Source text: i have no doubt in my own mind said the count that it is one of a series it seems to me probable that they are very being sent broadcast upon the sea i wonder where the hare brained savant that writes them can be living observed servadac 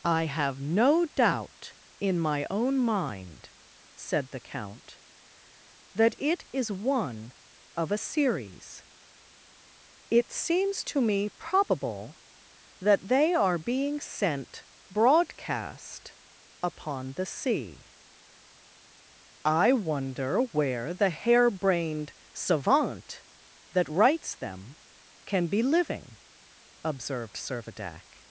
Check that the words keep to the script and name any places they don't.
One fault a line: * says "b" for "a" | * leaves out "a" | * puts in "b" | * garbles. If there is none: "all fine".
* leaves out "very"